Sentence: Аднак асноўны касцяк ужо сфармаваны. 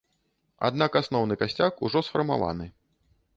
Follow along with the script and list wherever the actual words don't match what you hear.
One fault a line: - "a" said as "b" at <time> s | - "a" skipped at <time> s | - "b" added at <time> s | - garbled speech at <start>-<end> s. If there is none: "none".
none